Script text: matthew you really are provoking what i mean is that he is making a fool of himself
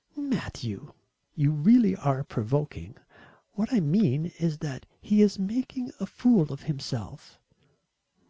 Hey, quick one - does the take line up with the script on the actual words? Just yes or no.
yes